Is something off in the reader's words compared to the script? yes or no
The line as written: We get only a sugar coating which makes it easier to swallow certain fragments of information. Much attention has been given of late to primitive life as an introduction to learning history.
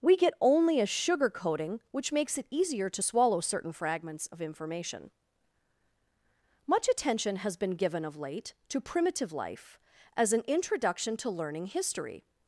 no